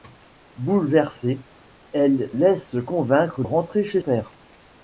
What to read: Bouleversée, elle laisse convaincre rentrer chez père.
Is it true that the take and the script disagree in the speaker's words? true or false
false